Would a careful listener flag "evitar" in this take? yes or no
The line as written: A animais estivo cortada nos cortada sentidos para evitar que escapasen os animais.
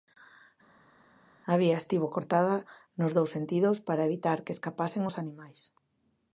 no